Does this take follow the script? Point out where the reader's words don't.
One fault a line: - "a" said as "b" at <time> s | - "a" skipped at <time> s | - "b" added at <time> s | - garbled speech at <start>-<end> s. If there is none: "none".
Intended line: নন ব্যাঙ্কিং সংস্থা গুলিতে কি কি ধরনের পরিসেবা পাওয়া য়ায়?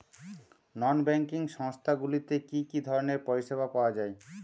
none